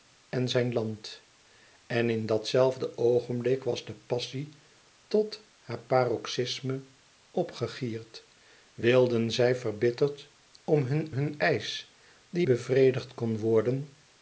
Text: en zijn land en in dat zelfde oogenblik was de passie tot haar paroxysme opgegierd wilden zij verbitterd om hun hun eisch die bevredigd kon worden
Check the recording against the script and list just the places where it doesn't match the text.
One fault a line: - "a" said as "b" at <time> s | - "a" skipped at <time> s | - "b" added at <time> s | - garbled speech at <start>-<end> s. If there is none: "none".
none